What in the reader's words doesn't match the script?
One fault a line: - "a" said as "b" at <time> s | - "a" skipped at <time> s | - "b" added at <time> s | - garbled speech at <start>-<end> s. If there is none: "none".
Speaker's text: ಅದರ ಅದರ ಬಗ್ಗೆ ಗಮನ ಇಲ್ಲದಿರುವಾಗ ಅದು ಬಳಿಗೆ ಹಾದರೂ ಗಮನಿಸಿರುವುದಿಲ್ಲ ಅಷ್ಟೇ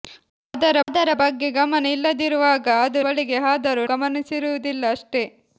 none